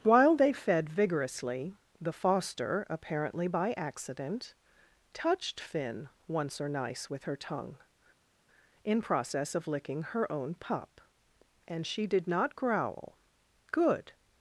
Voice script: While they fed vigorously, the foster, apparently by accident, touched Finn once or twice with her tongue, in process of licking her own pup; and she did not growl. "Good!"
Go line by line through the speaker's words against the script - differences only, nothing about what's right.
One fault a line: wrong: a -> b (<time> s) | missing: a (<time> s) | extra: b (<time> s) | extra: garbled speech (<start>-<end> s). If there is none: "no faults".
wrong: twice -> nice (6.7 s)